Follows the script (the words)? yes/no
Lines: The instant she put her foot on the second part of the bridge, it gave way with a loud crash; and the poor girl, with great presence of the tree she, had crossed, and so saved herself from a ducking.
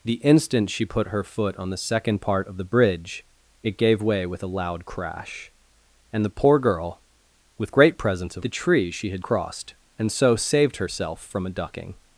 yes